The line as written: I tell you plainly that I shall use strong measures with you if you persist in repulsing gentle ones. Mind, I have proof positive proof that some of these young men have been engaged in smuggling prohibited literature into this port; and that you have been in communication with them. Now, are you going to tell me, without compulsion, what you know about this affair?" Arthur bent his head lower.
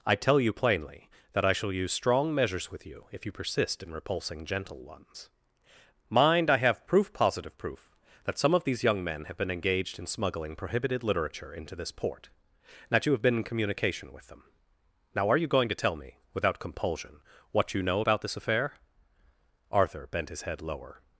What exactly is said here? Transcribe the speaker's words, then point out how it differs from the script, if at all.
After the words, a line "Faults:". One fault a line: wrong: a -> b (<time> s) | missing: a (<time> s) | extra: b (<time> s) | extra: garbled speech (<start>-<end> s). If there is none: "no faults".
I tell you plainly that I shall use strong measures with you if you persist in repulsing gentle ones. Mind, I have proof positive proof that some of these young men have been engaged in smuggling prohibited literature into this port; and that you have been in communication with them. Now, are you going to tell me, without compulsion, what you know about this affair?" Arthur bent his head lower.
Faults:
no faults